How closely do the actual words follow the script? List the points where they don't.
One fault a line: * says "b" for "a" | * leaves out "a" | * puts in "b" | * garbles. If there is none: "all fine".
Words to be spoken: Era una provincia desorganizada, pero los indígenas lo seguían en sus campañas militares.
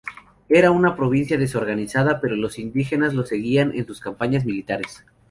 all fine